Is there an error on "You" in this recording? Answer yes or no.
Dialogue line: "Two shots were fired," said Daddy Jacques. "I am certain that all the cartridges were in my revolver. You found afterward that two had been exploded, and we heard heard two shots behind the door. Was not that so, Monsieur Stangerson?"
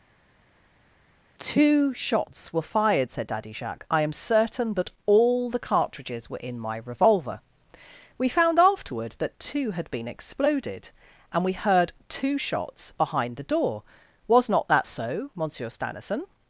yes